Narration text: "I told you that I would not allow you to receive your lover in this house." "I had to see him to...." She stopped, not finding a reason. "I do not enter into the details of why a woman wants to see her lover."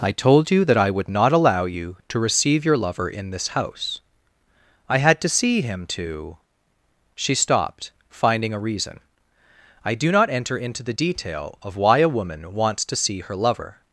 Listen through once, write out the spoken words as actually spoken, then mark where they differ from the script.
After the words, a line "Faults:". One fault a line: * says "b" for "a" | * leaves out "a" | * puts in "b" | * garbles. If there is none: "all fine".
"I told you that I would not allow you to receive your lover in this house." "I had to see him to...." She stopped, finding a reason. "I do not enter into the detail of why a woman wants to see her lover."
Faults:
* leaves out "not"
* says "detail" for "details"